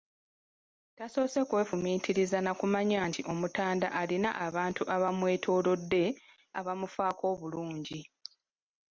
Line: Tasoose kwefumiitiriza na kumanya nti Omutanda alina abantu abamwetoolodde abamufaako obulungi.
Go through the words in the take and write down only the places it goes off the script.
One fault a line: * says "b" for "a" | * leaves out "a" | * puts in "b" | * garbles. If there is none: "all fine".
all fine